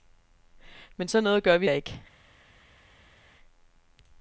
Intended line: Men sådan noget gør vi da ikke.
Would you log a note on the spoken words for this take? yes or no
no